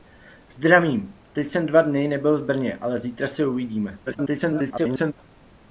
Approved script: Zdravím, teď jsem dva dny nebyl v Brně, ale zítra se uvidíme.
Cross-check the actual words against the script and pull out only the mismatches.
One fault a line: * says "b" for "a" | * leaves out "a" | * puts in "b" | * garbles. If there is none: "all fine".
* garbles